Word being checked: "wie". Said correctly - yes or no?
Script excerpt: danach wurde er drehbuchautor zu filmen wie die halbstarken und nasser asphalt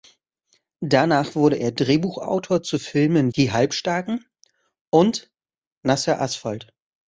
no